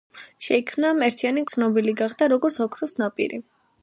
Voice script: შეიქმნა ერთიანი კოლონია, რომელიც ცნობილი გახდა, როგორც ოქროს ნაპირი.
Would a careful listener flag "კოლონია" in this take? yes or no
yes